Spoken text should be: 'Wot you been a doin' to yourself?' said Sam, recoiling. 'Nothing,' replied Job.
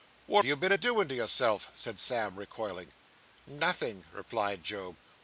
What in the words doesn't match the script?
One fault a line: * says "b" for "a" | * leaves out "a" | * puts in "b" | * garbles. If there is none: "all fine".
all fine